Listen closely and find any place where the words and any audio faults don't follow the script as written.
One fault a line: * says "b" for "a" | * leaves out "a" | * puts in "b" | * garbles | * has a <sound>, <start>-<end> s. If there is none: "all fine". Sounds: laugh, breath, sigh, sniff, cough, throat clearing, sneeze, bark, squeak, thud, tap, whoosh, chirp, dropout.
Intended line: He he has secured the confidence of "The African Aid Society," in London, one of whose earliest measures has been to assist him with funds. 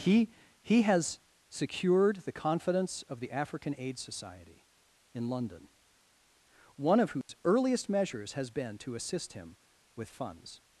* has a dropout, 7.2-7.3 s